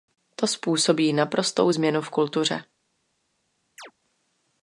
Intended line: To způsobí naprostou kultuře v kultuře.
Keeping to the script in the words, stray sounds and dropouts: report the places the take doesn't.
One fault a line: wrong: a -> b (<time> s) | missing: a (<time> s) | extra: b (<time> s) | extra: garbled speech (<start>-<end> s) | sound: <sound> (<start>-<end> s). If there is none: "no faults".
wrong: kultuře -> změnu (1.7 s)
sound: chirp (3.8-3.9 s)